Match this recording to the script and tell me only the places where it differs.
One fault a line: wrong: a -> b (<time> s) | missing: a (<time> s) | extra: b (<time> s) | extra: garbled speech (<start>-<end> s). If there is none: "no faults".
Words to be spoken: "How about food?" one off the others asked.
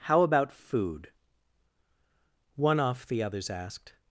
no faults